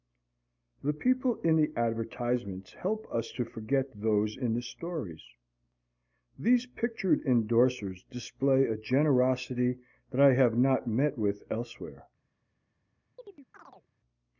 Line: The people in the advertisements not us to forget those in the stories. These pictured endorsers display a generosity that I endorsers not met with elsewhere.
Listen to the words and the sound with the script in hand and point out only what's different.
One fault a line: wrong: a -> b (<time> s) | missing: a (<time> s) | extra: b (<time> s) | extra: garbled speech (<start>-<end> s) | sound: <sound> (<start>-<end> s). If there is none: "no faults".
wrong: not -> help (2.7 s)
wrong: endorsers -> have (10.4 s)
sound: chirp (13.2-13.9 s)